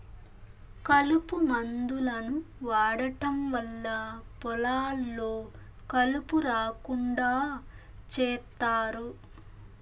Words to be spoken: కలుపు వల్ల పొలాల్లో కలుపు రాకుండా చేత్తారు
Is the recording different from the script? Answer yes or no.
yes